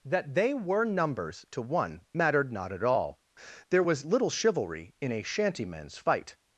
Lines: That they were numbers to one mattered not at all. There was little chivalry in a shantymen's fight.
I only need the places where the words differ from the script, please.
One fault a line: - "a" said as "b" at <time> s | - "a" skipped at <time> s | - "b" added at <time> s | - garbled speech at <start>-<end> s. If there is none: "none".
none